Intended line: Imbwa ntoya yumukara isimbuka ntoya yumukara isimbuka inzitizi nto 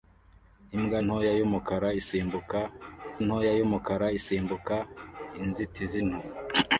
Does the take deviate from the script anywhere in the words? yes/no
no